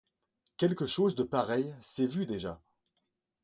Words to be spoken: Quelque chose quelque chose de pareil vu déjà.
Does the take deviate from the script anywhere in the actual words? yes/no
yes